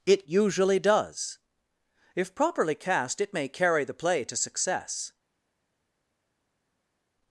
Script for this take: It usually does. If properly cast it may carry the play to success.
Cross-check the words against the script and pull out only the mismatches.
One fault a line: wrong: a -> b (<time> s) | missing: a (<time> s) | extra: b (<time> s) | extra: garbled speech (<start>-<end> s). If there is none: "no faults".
no faults